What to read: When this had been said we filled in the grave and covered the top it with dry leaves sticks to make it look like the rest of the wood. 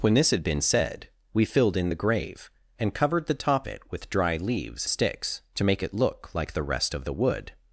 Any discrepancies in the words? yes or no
no